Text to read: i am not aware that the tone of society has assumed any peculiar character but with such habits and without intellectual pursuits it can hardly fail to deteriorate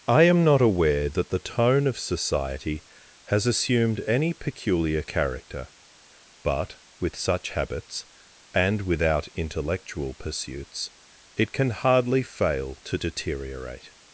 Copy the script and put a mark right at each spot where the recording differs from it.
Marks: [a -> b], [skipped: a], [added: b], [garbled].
i am not aware that the tone of society has assumed any peculiar character but with such habits and without intellectual pursuits it can hardly fail to deteriorate